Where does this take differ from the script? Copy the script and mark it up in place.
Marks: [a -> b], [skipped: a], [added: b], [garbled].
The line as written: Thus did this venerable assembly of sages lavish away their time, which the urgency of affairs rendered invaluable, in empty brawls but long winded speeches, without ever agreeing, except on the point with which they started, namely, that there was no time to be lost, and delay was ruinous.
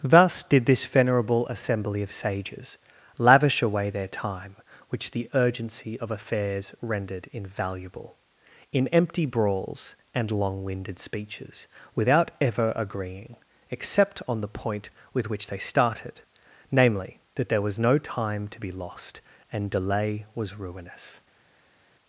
Thus did this venerable assembly of sages lavish away their time, which the urgency of affairs rendered invaluable, in empty brawls [but -> and] long winded speeches, without ever agreeing, except on the point with which they started, namely, that there was no time to be lost, and delay was ruinous.